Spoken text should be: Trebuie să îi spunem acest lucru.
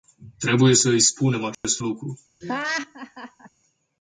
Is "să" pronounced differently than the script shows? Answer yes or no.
no